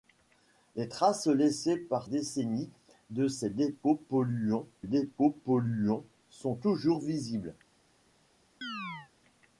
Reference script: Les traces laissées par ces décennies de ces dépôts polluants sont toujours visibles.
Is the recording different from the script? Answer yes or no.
yes